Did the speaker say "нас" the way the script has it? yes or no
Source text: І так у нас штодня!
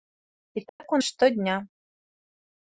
no